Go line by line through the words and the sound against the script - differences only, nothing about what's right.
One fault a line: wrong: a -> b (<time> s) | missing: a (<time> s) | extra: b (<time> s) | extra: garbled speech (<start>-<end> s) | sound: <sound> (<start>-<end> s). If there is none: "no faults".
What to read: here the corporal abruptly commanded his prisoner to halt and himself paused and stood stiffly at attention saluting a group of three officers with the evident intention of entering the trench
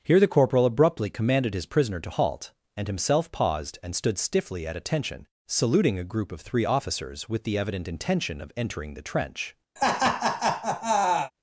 sound: laugh (9.8-11.3 s)